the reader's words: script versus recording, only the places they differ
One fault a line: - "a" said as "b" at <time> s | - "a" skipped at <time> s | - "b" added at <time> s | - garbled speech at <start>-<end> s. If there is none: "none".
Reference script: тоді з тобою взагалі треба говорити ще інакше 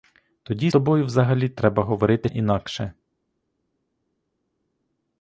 - "з" skipped at 0.7 s
- "ще" skipped at 2.3 s